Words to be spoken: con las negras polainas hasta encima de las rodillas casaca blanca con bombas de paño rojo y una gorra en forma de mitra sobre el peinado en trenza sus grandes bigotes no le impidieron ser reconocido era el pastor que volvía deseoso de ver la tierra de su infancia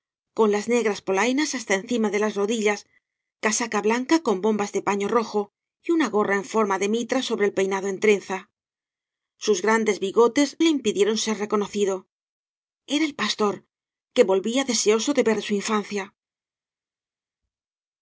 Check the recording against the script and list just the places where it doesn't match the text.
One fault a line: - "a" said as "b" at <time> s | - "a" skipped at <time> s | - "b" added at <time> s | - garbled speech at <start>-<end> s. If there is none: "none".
- "no" skipped at 10.6 s
- "la tierra" skipped at 15.4 s